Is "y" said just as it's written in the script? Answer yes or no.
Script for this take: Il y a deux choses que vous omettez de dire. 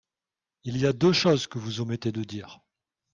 yes